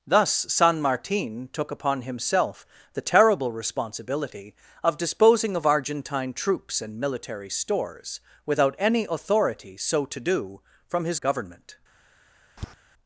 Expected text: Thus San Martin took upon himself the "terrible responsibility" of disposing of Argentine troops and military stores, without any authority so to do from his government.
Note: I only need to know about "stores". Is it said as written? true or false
true